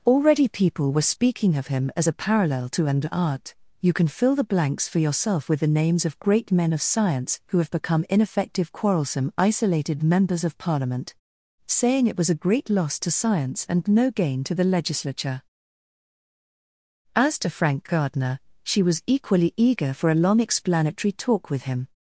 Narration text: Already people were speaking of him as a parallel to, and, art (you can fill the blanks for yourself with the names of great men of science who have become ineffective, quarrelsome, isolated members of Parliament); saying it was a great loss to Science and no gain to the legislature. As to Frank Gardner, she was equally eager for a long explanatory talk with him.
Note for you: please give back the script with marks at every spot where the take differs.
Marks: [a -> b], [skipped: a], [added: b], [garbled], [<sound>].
Already people were speaking of him as a parallel to, and, art (you can fill the blanks for yourself with the names of great men of science who have become ineffective, quarrelsome, isolated members of Parliament); saying it was a great loss to Science and no gain to the legislature. As to Frank Gardner, she was equally eager for a long explanatory talk with him.